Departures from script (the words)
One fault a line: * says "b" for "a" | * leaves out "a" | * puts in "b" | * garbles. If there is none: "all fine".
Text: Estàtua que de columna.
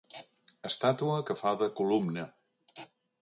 * puts in "fa"